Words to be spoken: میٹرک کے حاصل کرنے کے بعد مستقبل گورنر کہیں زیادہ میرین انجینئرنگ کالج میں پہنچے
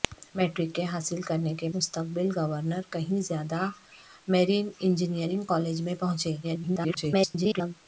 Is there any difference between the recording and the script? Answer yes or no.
yes